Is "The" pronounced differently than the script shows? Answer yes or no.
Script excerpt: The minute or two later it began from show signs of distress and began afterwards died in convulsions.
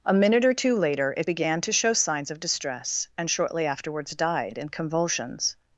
yes